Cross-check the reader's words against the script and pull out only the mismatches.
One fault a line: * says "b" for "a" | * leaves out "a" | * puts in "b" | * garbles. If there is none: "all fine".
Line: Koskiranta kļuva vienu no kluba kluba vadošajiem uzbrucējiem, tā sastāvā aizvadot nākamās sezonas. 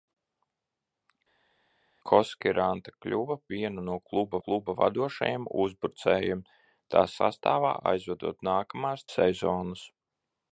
all fine